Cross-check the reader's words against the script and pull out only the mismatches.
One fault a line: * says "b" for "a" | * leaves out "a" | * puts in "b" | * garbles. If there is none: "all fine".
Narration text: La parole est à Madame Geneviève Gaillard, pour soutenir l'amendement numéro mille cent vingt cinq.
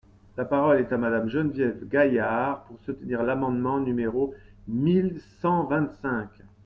all fine